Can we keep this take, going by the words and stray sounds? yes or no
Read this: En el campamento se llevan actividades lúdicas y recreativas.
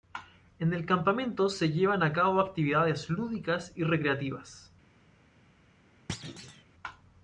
no